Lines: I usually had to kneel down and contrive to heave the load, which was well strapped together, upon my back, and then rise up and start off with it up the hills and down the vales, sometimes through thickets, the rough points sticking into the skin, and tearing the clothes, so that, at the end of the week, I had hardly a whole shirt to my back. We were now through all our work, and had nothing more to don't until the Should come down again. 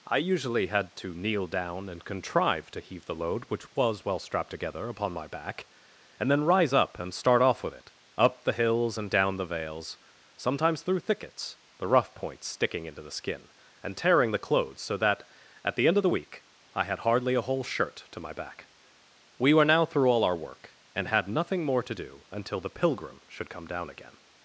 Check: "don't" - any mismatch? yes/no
yes